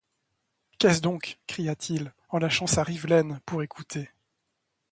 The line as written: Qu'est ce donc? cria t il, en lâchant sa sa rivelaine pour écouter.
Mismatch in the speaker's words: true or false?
true